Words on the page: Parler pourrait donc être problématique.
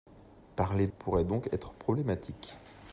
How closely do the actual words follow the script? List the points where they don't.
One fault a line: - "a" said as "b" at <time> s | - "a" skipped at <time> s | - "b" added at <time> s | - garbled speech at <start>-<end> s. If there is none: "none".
none